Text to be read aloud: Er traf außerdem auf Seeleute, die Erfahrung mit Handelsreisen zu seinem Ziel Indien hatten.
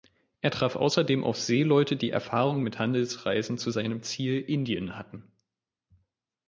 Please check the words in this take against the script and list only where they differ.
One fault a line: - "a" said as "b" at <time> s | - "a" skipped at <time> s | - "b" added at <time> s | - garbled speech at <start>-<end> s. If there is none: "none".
none